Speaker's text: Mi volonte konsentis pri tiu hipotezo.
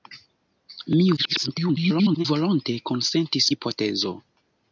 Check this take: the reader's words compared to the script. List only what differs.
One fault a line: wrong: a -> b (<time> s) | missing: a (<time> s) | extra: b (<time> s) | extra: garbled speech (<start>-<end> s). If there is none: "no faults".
extra: garbled speech (1.2-2.3 s)
missing: pri tiu (3.5 s)